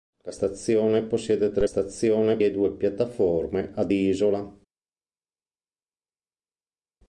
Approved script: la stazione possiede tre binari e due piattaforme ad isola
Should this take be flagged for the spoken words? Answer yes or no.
yes